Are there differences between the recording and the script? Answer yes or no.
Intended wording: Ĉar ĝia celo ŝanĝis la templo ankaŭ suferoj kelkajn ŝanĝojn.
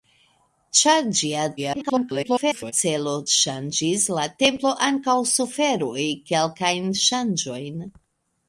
yes